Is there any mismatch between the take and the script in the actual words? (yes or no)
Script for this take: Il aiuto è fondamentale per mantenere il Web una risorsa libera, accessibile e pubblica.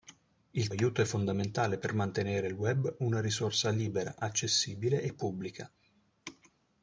no